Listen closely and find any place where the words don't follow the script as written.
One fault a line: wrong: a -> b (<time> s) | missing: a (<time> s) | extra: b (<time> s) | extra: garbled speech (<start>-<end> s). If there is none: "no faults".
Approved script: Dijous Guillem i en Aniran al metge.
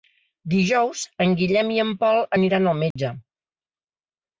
extra: en (1.3 s)
extra: Pol (2.0 s)